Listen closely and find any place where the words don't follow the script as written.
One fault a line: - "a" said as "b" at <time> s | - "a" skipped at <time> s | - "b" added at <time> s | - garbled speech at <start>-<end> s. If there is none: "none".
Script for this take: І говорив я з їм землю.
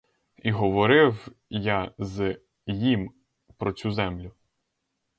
- "про цю" added at 3.6 s